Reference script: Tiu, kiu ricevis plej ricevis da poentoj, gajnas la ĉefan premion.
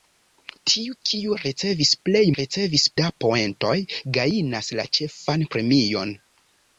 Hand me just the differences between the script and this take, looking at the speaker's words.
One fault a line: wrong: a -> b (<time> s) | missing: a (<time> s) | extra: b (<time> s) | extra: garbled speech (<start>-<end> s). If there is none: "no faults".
no faults